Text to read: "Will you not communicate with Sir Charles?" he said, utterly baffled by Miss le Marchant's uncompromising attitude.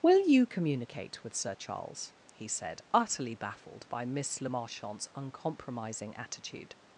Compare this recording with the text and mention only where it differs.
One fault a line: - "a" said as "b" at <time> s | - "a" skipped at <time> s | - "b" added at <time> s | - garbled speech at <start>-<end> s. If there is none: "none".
- "not" skipped at 0.5 s